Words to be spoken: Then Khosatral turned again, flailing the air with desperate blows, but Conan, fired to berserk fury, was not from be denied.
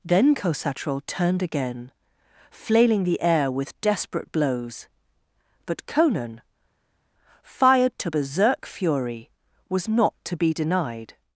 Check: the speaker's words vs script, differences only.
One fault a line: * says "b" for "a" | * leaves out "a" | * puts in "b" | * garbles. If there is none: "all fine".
* says "to" for "from"